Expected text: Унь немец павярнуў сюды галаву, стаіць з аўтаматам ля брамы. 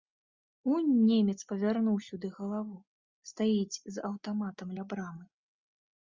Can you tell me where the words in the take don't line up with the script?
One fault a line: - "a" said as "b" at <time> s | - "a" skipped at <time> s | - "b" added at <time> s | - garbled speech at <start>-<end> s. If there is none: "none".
none